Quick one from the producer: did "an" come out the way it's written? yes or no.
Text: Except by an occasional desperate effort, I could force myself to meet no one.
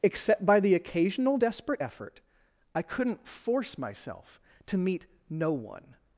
no